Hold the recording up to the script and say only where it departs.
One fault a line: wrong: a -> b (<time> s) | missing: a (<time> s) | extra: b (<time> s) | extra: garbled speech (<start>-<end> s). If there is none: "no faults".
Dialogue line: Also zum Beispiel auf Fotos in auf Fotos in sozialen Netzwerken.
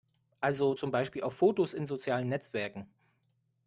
missing: auf Fotos in (1.9 s)